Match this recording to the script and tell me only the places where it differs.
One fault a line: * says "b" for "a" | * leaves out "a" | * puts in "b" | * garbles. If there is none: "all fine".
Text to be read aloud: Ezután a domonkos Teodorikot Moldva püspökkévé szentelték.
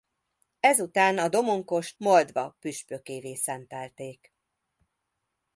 * leaves out "Teodorikot"